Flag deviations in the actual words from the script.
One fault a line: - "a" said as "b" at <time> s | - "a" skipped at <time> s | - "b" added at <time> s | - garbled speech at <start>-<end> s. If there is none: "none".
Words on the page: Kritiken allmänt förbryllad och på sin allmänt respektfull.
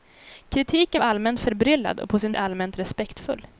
none